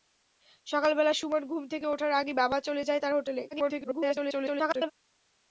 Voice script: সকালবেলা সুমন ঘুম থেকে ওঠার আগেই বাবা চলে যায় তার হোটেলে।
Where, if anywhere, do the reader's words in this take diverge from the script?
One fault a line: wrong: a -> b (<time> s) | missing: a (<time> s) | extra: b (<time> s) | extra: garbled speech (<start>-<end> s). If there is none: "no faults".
extra: garbled speech (3.5-4.9 s)